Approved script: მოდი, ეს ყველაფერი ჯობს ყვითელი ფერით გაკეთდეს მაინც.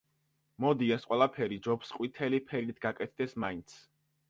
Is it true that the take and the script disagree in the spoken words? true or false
false